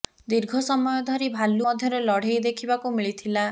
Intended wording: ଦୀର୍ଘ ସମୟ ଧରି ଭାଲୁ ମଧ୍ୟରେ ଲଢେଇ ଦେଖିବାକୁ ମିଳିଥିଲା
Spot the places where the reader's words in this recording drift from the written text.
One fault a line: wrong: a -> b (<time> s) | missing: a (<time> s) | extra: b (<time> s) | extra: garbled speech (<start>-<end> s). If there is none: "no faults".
no faults